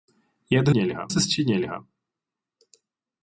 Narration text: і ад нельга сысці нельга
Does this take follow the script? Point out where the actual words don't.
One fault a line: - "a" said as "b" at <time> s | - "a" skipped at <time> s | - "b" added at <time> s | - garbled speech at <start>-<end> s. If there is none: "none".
none